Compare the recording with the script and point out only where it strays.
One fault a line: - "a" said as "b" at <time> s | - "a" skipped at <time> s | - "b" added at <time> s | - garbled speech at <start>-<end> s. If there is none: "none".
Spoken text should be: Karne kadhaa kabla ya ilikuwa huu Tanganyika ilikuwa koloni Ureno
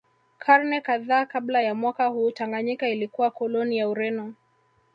- "ilikuwa" said as "mwaka" at 1.8 s
- "ya" added at 3.8 s